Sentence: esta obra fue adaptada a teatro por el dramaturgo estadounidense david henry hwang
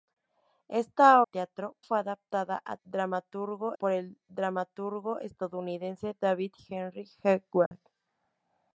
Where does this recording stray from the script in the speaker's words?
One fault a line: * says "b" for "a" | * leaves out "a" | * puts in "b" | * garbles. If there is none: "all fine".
* says "teatro" for "obra"
* says "dramaturgo" for "teatro"